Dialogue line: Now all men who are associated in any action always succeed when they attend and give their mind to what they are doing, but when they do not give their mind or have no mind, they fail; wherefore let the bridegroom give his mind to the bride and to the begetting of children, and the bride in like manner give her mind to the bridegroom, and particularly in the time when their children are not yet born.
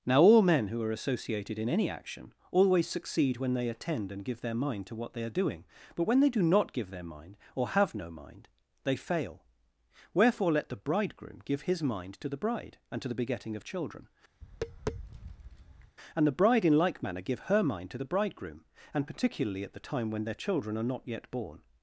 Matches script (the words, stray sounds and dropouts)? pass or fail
fail